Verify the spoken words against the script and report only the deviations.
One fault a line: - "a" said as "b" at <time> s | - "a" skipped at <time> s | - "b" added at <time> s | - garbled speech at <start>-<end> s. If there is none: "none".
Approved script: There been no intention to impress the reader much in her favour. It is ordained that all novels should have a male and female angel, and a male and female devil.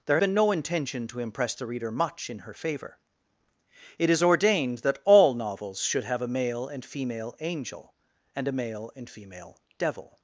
none